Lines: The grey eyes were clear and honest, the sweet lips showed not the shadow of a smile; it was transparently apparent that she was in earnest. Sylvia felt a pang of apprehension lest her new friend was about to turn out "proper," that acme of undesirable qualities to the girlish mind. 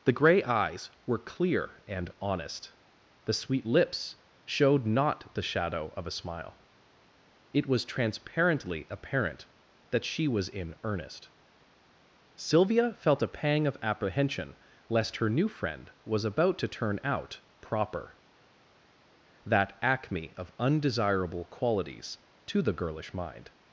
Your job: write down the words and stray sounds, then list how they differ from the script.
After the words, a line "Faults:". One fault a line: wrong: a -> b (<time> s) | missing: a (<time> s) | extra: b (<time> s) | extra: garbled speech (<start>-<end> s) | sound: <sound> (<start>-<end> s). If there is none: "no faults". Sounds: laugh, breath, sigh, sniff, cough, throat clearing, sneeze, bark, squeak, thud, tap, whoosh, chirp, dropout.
The grey eyes were clear and honest, the sweet lips showed not the shadow of a smile; it was transparently apparent that she was in earnest. Sylvia felt a pang of apprehension lest her new friend was about to turn out "proper," that acme of undesirable qualities to the girlish mind.
Faults:
no faults